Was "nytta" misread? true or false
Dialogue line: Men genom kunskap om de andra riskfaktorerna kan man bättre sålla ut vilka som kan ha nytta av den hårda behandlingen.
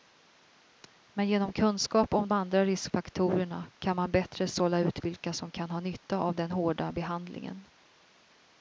false